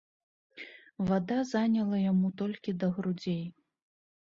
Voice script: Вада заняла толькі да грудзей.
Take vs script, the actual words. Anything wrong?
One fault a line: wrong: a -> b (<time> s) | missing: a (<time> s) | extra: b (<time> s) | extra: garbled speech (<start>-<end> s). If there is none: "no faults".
extra: яму (2.1 s)